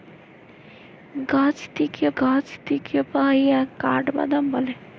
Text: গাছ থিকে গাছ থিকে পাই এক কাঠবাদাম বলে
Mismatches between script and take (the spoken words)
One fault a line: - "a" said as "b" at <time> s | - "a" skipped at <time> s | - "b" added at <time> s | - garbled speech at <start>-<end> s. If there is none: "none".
none